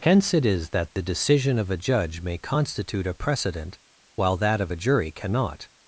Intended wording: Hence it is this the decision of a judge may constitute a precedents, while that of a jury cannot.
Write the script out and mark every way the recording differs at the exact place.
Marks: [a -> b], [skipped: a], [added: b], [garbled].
Hence it is [this -> that] the decision of a judge may constitute a [precedents, -> precedent] while that of a jury cannot.